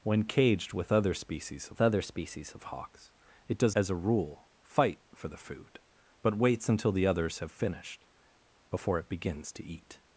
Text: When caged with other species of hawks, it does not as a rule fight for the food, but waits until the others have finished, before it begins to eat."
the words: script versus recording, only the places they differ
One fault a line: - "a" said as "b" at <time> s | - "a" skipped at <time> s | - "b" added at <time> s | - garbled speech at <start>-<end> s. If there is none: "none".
- "other species of" added at 1.8 s
- "not" skipped at 3.8 s